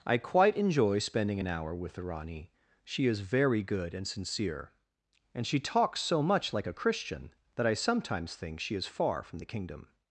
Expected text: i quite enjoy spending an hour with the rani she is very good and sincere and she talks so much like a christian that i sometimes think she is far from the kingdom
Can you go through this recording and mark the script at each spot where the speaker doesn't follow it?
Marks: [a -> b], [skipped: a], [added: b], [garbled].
i quite enjoy spending an hour with the rani she is very good and sincere and she talks so much like a christian that i sometimes think she is far from the kingdom